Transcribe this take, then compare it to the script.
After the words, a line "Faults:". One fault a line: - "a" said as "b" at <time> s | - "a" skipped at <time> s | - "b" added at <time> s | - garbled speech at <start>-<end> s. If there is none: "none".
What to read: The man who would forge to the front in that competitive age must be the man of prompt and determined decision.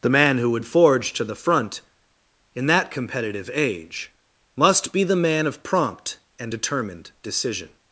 The man who would forge to the front in that competitive age must be the man of prompt and determined decision.
Faults:
none